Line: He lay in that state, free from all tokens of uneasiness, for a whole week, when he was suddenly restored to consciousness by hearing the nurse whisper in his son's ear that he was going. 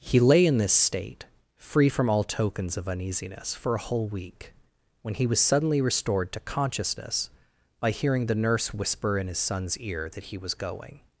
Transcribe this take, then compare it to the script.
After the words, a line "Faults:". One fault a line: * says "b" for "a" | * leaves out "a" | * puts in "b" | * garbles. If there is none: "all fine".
He lay in this state, free from all tokens of uneasiness, for a whole week, when he was suddenly restored to consciousness by hearing the nurse whisper in his son's ear that he was going.
Faults:
* says "this" for "that"